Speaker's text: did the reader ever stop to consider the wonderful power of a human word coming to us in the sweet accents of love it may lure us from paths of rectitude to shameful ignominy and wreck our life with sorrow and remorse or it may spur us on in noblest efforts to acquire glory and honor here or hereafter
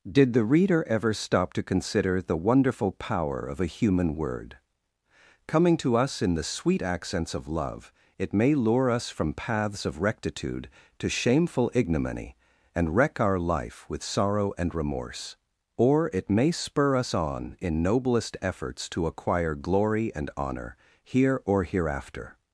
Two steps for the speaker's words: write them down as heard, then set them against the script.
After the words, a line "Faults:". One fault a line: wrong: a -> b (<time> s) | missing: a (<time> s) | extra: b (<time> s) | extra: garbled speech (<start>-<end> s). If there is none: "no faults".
did the reader ever stop to consider the wonderful power of a human word coming to us in the sweet accents of love it may lure us from paths of rectitude to shameful ignominy and wreck our life with sorrow and remorse or it may spur us on in noblest efforts to acquire glory and honor here or hereafter
Faults:
no faults